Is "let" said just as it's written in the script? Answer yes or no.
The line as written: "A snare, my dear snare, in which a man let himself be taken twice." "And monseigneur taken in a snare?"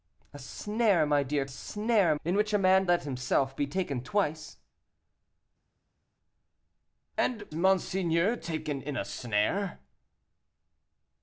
yes